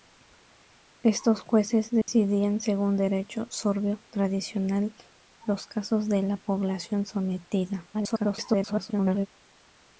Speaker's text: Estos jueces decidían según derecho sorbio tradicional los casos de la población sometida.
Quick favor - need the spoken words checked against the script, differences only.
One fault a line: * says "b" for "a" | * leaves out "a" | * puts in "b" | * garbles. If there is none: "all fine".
* garbles